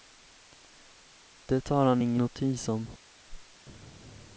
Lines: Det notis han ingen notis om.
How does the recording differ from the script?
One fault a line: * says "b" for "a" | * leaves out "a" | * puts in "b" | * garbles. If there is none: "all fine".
* says "tar" for "notis"